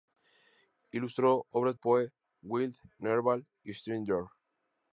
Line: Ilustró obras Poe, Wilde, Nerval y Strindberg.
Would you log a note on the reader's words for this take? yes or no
no